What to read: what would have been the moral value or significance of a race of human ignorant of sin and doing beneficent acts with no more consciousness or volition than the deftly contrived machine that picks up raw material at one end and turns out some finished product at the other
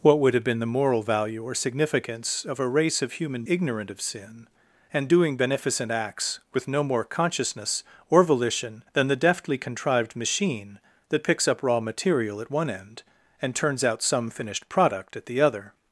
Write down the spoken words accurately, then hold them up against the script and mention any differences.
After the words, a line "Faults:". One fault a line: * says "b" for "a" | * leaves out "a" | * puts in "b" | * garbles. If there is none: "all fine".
what would have been the moral value or significance of a race of human ignorant of sin and doing beneficent acts with no more consciousness or volition than the deftly contrived machine that picks up raw material at one end and turns out some finished product at the other
Faults:
all fine